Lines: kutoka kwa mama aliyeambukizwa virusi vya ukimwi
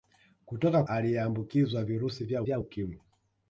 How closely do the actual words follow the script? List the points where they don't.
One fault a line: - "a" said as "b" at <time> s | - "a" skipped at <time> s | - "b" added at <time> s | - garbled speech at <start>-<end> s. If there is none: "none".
- "kwa mama" skipped at 0.8 s
- "vya" added at 2.4 s